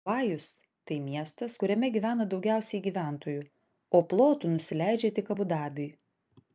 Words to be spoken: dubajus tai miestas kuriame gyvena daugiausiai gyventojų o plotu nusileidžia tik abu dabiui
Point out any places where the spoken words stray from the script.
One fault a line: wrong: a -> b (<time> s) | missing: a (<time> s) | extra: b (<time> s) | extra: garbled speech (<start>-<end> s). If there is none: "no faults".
no faults